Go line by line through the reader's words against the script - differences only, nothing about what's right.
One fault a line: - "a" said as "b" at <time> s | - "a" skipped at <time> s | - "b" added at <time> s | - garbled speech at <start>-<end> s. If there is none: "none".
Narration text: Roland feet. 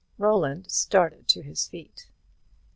- "started to his" added at 0.7 s